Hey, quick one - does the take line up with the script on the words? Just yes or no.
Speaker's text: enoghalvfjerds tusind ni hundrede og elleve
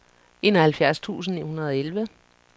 yes